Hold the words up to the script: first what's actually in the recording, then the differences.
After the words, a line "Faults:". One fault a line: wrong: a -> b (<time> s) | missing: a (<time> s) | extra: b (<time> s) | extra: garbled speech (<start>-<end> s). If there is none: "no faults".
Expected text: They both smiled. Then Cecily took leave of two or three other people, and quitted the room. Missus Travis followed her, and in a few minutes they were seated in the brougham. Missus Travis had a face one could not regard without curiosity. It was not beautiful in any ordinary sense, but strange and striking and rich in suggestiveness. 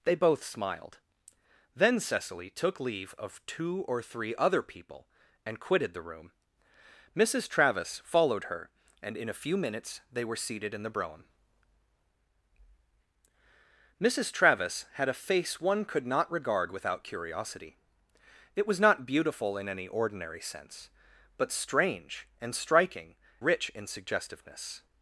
They both smiled. Then Cecily took leave of two or three other people, and quitted the room. Missus Travis followed her, and in a few minutes they were seated in the brougham. Missus Travis had a face one could not regard without curiosity. It was not beautiful in any ordinary sense, but strange and striking rich in suggestiveness.
Faults:
missing: and (23.1 s)